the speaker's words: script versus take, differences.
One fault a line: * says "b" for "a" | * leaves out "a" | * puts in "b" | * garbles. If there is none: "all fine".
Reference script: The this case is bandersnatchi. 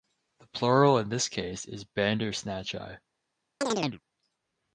* puts in "plural in"